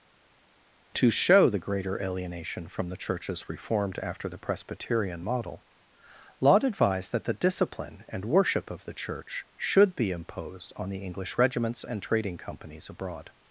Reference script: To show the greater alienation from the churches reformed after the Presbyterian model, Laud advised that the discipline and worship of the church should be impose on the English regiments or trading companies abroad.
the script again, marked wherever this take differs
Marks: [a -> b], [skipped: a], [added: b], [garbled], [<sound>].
To show the greater alienation from the churches reformed after the Presbyterian model, Laud advised that the discipline and worship of the church should be [impose -> imposed] on the English regiments [or -> and] trading companies abroad.